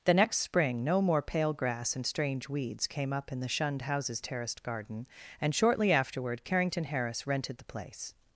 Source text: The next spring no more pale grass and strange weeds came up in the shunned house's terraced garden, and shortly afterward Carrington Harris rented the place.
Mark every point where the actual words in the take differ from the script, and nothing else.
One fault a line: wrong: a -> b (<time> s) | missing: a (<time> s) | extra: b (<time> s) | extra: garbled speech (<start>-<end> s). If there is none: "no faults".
no faults